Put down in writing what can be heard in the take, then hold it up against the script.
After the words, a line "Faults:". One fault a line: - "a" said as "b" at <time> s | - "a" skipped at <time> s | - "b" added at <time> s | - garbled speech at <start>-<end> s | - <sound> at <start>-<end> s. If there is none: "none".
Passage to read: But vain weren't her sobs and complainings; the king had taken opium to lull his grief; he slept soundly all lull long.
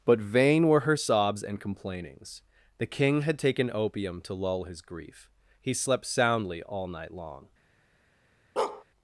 But vain were her sobs and complainings; the king had taken opium to lull his grief; he slept soundly all night long.
Faults:
- "weren't" said as "were" at 0.7 s
- "lull" said as "night" at 6.9 s
- bark at 8.6-8.8 s